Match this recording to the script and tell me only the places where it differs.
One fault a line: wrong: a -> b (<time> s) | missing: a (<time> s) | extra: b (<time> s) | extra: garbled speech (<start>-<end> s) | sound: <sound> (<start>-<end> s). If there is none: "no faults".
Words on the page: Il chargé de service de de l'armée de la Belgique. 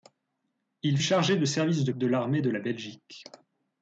no faults